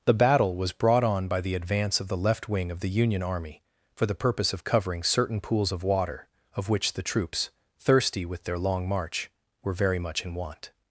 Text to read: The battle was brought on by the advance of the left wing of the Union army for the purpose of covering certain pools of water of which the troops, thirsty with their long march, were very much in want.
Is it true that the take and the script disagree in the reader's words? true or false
false